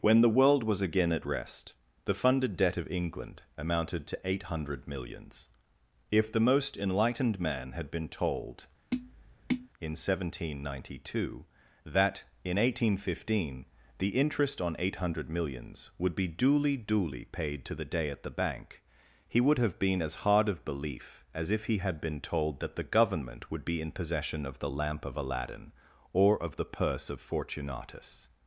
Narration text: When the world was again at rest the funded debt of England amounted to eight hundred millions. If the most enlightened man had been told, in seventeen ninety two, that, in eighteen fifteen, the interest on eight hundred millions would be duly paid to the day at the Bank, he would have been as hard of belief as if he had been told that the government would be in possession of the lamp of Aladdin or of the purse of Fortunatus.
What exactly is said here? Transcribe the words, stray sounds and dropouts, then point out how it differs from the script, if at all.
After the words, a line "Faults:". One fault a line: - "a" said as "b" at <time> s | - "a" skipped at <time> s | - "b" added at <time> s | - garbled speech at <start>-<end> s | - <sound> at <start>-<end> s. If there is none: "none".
When the world was again at rest the funded debt of England amounted to eight hundred millions. If the most enlightened man had been told, in seventeen ninety two, that, in eighteen fifteen, the interest on eight hundred millions would be duly duly paid to the day at the Bank, he would have been as hard of belief as if he had been told that the government would be in possession of the lamp of Aladdin or of the purse of Fortunatus.
Faults:
- tap at 8.9-9.7 s
- "duly" added at 16.8 s